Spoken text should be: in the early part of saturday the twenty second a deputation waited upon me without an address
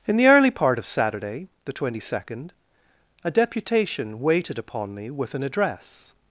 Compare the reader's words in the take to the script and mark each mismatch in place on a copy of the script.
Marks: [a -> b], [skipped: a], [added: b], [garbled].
in the early part of saturday the twenty second a deputation waited upon me [without -> with] an address